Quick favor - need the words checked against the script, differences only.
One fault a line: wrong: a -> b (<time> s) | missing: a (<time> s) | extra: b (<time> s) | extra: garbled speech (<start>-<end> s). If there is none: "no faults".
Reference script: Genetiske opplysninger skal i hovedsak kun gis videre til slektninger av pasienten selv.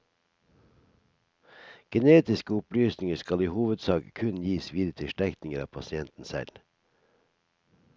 no faults